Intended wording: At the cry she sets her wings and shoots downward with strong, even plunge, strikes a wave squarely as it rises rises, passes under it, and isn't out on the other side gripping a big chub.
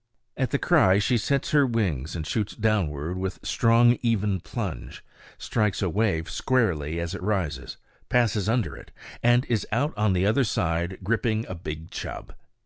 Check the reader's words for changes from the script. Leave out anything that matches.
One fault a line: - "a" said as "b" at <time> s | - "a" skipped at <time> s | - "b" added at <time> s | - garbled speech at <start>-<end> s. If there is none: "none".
- "rises" skipped at 7.8 s
- "isn't" said as "is" at 9.5 s